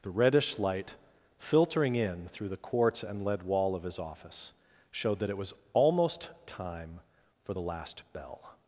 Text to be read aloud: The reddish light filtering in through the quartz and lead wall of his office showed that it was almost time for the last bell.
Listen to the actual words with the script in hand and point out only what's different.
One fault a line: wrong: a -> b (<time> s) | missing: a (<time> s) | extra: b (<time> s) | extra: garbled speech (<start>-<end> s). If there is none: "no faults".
no faults